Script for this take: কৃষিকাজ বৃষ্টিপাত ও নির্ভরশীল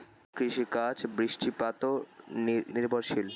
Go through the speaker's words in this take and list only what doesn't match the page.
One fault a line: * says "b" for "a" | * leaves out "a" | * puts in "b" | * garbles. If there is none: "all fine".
all fine